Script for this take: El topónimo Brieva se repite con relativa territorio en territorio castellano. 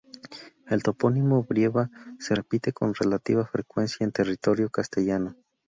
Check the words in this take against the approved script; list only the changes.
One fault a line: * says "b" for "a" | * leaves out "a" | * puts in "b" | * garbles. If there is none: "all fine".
* says "frecuencia" for "territorio"